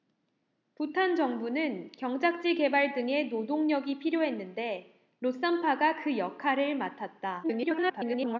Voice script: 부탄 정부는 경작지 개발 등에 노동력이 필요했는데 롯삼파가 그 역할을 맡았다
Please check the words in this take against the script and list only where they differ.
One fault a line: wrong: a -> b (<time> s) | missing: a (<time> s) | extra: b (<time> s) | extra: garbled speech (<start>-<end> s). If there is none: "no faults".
extra: garbled speech (7.4-8.4 s)